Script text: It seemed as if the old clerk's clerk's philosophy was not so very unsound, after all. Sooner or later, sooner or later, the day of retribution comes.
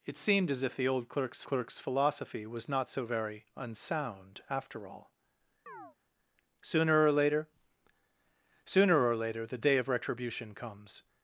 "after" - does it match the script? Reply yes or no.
yes